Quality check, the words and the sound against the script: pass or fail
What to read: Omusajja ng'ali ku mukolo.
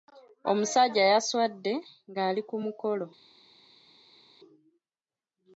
fail